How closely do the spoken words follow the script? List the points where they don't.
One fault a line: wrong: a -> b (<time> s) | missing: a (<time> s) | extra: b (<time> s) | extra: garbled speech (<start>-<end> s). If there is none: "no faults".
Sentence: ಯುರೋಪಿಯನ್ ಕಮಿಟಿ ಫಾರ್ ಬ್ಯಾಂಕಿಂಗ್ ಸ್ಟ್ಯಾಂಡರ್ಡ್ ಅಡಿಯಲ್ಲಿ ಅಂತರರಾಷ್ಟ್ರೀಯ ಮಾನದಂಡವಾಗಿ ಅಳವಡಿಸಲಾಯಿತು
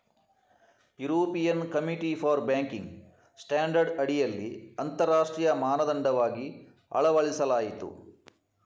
no faults